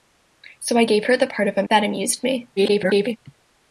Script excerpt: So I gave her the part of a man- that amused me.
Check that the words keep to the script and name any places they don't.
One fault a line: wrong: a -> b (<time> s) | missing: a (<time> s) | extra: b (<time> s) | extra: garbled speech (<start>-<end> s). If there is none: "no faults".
missing: man (1.6 s)
extra: garbled speech (2.6-3.2 s)